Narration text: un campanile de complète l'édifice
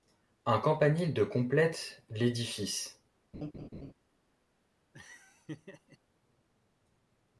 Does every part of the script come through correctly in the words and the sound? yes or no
no